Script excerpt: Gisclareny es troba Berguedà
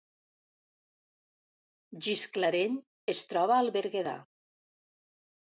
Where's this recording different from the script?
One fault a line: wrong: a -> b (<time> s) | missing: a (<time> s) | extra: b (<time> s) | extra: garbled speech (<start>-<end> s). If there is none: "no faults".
extra: al (3.6 s)